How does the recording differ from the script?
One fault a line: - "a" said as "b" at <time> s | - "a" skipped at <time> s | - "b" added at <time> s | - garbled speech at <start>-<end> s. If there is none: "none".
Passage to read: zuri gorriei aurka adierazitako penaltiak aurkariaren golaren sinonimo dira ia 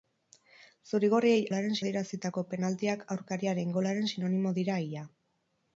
- "aurka" said as "golaren" at 1.5 s